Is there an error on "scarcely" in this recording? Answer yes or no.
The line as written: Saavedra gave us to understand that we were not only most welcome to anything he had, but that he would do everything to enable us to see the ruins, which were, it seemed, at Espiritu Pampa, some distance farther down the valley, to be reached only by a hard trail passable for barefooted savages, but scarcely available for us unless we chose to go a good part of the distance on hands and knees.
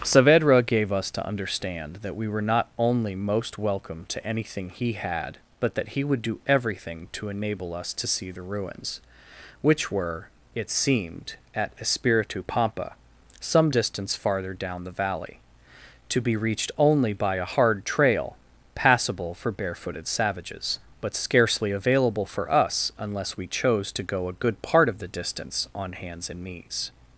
no